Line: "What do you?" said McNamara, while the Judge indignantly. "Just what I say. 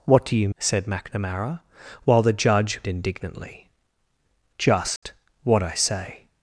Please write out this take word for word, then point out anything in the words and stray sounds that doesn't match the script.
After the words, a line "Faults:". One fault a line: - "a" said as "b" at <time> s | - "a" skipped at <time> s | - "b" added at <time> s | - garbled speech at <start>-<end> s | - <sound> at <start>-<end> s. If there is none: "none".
"What do you?" said McNamara, while the Judge indignantly. "Just what I say.
Faults:
- dropout at 5.0-5.0 s